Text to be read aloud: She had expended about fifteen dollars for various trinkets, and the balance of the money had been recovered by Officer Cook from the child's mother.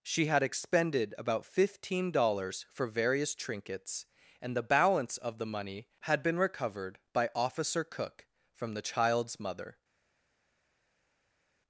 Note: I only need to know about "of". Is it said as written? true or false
true